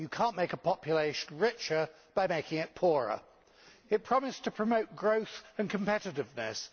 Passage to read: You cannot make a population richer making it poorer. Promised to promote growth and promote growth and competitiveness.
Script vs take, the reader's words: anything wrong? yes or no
yes